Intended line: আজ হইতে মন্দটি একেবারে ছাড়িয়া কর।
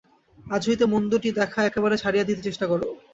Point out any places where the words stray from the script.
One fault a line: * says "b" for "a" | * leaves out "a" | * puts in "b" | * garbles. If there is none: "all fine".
* puts in "দেখা"
* puts in "দিতে চেষ্টা"